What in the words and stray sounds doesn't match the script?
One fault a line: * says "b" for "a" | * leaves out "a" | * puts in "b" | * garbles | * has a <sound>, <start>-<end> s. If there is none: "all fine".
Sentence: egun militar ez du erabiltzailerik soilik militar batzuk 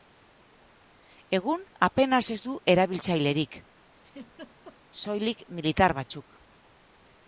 * says "apenas" for "militar"
* has a laugh, 3.9-4.8 s